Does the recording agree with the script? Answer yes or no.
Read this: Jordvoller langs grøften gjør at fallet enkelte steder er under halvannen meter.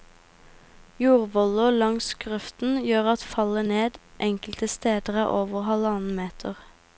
no